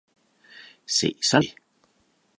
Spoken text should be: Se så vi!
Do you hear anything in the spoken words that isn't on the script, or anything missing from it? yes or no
no